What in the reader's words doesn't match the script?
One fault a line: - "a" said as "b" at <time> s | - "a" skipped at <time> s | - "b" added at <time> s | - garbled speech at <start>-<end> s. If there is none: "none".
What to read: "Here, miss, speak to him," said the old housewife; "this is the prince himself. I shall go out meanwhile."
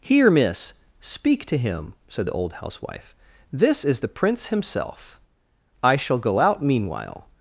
none